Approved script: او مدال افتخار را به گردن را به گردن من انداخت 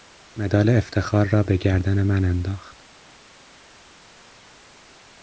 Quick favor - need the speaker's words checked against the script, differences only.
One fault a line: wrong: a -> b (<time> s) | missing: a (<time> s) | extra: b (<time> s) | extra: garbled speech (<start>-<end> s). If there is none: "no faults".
missing: را به گردن (2.0 s)